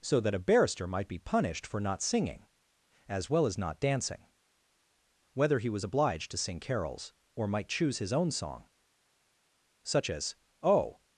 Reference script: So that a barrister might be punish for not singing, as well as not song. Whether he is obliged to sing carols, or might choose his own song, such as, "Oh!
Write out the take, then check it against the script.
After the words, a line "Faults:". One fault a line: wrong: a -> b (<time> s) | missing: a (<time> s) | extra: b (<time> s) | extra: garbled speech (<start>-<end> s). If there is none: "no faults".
So that a barrister might be punished for not singing, as well as not dancing. Whether he was obliged to sing carols, or might choose his own song, such as, "Oh!
Faults:
wrong: punish -> punished (1.2 s)
wrong: song -> dancing (3.8 s)
wrong: is -> was (5.7 s)